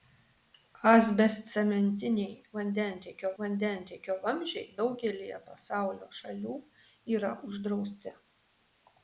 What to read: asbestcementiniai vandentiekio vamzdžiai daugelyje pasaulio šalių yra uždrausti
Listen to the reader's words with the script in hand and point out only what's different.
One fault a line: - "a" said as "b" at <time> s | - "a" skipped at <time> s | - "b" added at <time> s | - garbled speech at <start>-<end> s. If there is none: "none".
- "vandentiekio" added at 3.4 s